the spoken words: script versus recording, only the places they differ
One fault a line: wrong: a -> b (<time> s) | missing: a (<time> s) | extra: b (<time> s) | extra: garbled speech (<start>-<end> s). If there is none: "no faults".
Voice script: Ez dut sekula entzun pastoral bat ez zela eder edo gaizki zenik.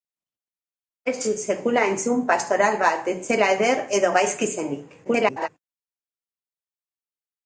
extra: garbled speech (5.0-5.5 s)